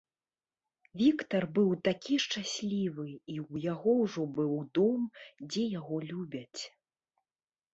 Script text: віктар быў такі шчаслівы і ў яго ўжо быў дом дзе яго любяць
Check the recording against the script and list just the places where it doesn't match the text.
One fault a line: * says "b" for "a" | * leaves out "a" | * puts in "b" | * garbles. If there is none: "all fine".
all fine